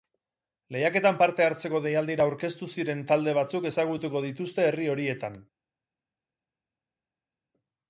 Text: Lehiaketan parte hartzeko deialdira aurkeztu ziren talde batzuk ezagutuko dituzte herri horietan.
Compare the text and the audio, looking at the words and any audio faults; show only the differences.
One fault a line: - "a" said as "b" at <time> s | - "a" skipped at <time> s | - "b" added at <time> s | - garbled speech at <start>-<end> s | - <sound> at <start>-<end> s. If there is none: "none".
none